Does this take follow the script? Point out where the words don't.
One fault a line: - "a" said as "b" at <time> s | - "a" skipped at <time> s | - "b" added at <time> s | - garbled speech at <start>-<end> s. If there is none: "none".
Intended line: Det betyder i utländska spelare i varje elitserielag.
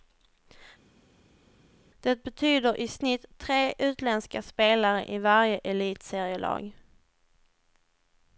- "snitt tre" added at 2.9 s